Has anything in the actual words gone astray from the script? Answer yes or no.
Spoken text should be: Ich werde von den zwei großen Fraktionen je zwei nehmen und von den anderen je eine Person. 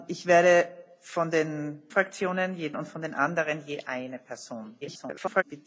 yes